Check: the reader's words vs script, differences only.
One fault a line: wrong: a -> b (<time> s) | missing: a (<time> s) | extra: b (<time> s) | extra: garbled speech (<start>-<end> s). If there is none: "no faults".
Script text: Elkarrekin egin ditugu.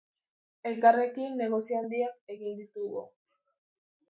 extra: negozio handiak (1.4 s)